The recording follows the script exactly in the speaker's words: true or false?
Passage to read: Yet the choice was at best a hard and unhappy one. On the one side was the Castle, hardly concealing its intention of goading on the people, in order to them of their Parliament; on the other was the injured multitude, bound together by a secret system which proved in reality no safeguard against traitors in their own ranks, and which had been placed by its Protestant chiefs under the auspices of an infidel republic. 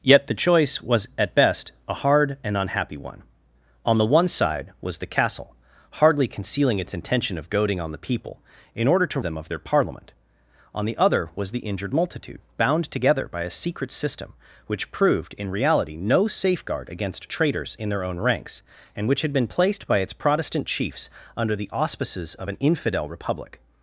true